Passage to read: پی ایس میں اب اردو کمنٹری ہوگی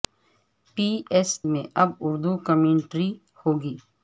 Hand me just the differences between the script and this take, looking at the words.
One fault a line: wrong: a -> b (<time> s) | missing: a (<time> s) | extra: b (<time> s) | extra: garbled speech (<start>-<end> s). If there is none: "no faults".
no faults